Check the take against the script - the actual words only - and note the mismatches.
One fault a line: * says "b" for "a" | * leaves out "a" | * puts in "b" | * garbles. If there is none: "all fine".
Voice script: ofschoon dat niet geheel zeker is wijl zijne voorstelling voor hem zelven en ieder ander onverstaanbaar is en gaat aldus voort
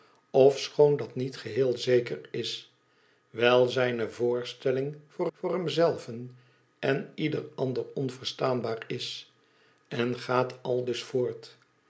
* puts in "voor"